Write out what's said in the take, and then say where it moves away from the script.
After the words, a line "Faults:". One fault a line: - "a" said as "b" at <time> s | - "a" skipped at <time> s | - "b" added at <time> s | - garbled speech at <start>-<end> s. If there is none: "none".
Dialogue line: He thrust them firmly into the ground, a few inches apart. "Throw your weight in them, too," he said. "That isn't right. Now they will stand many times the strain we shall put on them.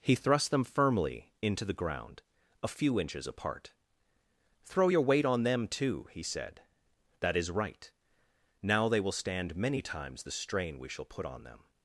He thrust them firmly into the ground, a few inches apart. "Throw your weight on them, too," he said. "That is right. Now they will stand many times the strain we shall put on them.
Faults:
- "in" said as "on" at 5.3 s
- "isn't" said as "is" at 7.4 s